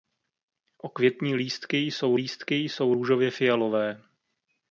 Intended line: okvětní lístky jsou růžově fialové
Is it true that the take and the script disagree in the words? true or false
true